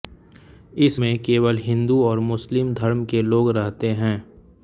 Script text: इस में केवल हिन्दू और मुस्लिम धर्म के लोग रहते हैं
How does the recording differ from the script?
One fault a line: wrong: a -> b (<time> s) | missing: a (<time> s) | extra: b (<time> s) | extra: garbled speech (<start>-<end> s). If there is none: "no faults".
no faults